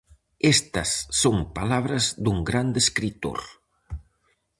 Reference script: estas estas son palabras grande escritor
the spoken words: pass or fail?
fail